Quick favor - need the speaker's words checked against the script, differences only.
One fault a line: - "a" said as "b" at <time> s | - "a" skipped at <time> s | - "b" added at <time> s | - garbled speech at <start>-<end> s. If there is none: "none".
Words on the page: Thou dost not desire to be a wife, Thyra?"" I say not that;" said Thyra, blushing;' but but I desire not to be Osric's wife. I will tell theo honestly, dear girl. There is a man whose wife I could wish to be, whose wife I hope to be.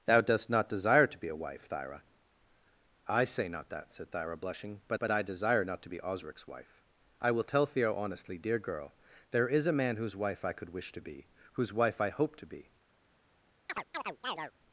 none